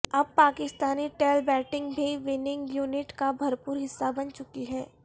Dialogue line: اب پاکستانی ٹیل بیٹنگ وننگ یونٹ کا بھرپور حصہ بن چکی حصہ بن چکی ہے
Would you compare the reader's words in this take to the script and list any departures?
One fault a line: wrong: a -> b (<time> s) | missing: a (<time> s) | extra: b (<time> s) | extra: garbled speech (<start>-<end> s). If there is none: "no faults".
extra: بھی (1.9 s)
missing: حصہ بن چکی (4.6 s)